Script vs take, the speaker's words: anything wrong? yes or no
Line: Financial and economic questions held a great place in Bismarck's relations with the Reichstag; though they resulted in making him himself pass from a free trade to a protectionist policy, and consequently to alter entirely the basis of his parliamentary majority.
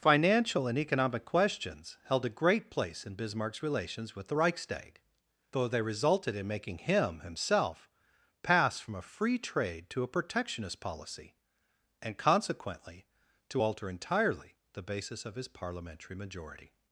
no